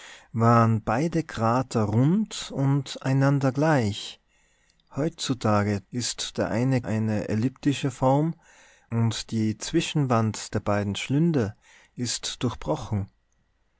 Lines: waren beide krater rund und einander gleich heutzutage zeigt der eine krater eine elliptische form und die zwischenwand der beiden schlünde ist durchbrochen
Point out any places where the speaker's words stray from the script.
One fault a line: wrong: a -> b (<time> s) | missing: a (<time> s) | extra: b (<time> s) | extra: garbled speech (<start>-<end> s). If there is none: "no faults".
wrong: zeigt -> ist (5.9 s)
missing: krater (6.8 s)